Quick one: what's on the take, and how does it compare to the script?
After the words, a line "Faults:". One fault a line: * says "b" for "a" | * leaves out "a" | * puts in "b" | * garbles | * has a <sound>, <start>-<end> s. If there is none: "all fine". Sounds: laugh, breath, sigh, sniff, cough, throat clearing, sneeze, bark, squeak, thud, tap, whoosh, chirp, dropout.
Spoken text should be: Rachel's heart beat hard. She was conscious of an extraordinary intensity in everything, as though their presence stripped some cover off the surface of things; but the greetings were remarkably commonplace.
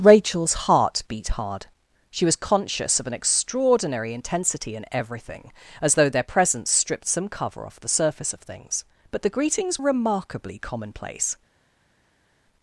Rachel's heart beat hard. She was conscious of an extraordinary intensity in everything, as though their presence stripped some cover off the surface of things; but the greetings remarkably commonplace.
Faults:
* leaves out "were"